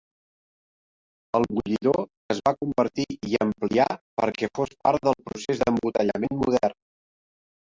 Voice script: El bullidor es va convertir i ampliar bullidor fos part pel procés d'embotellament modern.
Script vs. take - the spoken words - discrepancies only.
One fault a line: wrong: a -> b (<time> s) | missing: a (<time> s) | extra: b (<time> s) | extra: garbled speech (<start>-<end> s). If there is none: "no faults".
wrong: bullidor -> perquè (4.2 s)
wrong: pel -> del (5.1 s)